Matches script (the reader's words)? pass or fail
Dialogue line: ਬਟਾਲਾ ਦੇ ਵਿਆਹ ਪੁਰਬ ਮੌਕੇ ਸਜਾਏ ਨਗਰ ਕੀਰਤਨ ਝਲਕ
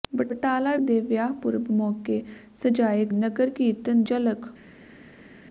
pass